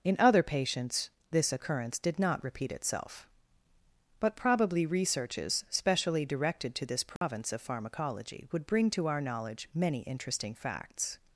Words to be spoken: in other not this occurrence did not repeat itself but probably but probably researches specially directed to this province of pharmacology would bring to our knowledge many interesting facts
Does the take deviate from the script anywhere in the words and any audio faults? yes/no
yes